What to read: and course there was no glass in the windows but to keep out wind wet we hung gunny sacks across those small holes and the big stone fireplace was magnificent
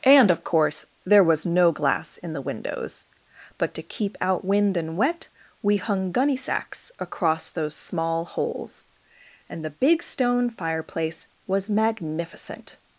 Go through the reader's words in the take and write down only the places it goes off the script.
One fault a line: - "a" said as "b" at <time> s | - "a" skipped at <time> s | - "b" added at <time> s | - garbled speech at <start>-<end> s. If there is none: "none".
- "of" added at 0.3 s
- "and" added at 4.8 s